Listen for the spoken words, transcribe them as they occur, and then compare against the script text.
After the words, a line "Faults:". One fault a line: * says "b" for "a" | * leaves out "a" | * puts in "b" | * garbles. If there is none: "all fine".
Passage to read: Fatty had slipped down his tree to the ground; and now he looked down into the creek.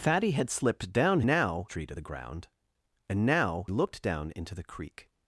Fatty had slipped down now tree to the ground; and now looked down into the creek.
Faults:
* says "now" for "his"
* leaves out "he"